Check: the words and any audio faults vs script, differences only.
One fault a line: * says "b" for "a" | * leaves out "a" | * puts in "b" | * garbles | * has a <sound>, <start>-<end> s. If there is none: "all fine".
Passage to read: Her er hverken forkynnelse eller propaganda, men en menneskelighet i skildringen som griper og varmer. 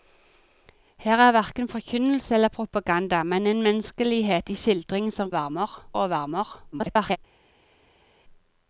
* says "varmer" for "griper"
* garbles